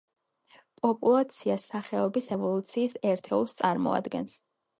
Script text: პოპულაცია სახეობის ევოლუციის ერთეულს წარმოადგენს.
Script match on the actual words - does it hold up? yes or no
yes